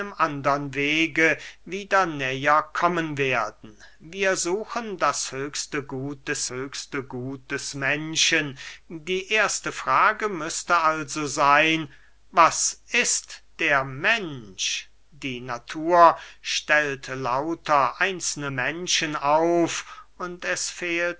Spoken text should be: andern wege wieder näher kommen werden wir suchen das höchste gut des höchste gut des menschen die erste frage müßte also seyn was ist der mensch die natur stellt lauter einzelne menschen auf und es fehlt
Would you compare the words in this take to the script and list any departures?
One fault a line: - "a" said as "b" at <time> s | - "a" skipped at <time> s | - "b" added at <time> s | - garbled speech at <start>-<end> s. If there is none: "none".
none